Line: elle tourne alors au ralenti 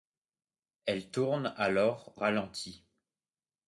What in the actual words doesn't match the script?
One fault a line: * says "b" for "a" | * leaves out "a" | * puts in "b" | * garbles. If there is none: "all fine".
* leaves out "au"